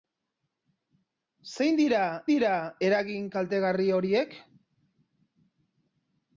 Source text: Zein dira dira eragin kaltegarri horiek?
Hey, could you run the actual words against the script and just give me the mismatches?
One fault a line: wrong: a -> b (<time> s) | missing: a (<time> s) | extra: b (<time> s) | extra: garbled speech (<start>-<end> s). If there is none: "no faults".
no faults